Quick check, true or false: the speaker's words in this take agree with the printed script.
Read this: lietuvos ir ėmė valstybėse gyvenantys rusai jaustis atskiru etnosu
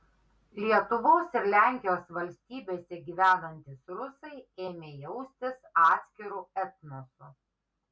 false